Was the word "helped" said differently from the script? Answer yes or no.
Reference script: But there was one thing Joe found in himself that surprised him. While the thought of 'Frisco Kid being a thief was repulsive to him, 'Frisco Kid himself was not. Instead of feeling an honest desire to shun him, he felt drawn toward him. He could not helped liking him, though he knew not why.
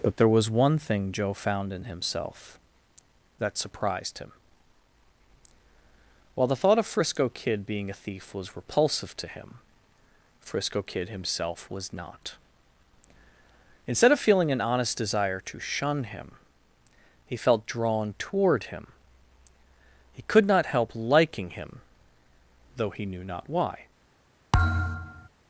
yes